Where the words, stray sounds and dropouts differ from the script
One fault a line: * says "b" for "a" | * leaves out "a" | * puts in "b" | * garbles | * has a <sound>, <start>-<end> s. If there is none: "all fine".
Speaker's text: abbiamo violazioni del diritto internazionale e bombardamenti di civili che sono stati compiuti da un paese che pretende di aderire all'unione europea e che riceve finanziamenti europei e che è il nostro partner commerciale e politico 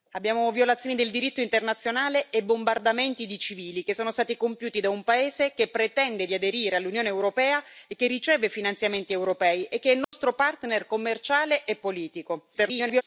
* has a dropout, 10.0-10.1 s
* garbles